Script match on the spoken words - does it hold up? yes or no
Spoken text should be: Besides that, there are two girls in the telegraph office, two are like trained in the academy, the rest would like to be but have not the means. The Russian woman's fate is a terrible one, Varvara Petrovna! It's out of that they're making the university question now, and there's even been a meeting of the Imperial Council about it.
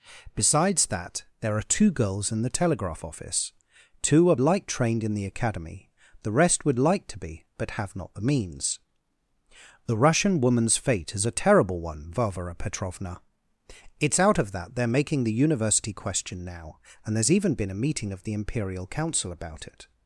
yes